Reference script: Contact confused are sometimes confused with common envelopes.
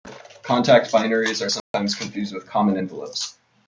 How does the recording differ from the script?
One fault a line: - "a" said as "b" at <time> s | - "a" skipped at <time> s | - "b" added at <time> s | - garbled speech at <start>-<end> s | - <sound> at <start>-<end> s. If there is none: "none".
- "confused" said as "binaries" at 0.9 s
- dropout at 1.6-1.7 s